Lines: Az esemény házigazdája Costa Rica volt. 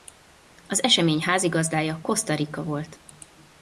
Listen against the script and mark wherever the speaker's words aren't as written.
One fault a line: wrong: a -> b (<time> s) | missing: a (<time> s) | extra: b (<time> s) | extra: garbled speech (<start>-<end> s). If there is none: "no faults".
no faults